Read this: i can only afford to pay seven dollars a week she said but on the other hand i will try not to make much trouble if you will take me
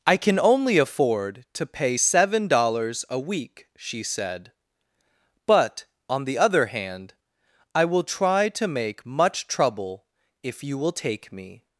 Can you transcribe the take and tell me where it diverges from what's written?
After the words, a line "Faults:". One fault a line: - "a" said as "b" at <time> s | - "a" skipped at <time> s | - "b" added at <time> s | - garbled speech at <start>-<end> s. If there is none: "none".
i can only afford to pay seven dollars a week she said but on the other hand i will try to make much trouble if you will take me
Faults:
- "not" skipped at 8.5 s